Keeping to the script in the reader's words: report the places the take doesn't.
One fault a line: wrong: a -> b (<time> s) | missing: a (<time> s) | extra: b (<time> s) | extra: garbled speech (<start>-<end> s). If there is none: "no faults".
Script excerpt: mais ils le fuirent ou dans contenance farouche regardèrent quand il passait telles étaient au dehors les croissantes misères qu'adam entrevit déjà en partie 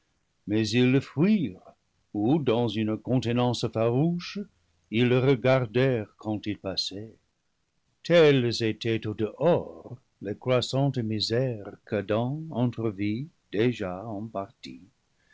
extra: une (2.7 s)
extra: ils le (4.9 s)